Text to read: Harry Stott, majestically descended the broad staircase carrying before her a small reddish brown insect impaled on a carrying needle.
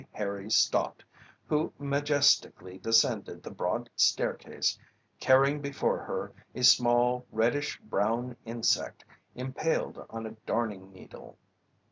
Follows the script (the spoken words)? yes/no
no